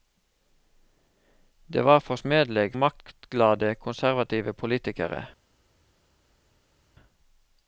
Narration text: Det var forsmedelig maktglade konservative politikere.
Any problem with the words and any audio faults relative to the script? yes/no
no